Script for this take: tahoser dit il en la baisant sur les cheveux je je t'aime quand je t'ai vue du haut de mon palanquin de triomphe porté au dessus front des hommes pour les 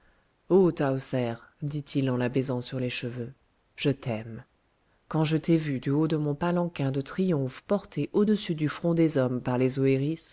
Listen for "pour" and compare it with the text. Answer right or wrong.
wrong